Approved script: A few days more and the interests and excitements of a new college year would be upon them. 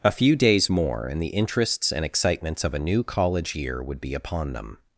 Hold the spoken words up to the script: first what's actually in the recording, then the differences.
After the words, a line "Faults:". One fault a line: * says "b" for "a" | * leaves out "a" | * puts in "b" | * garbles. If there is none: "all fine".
A few days more and the interests and excitements of a new college year would be upon them.
Faults:
all fine